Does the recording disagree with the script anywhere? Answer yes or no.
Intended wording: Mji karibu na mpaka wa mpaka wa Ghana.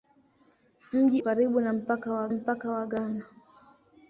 no